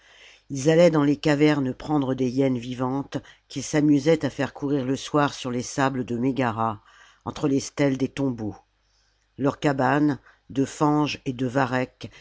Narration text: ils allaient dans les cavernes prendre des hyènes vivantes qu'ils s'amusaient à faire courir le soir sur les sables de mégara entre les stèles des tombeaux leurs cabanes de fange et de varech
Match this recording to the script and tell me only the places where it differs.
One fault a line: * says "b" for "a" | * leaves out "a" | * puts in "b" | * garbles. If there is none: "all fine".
all fine